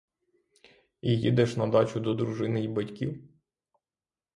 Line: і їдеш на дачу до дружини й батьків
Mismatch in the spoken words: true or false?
false